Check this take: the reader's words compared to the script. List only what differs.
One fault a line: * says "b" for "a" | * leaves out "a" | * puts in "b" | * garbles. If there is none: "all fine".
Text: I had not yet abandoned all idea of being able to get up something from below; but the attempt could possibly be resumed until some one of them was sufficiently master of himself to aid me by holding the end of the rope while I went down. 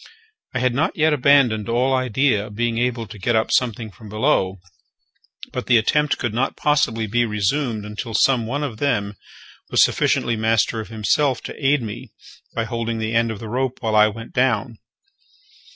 * puts in "not"